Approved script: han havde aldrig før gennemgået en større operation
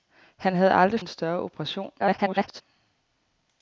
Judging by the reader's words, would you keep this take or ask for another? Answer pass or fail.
fail